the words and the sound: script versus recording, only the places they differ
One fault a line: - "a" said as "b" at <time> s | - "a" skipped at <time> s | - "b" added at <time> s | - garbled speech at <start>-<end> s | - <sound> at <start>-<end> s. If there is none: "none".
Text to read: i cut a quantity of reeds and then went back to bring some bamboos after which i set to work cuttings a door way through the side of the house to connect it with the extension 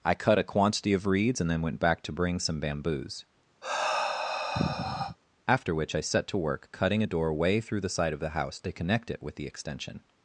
- sigh at 3.6-5.2 s
- "cuttings" said as "cutting" at 6.7 s